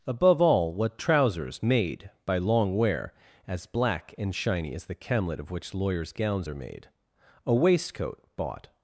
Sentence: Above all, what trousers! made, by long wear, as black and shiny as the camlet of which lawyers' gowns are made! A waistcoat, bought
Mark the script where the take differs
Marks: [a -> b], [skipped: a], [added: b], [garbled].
Above all, what trousers! made, by long wear, as black and shiny as the camlet of which lawyers' gowns are made! A waistcoat, bought